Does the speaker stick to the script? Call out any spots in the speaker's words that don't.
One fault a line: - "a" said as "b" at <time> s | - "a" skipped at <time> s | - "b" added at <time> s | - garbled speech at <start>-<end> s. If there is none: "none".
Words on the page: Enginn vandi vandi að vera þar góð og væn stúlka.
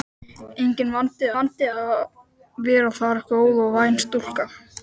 none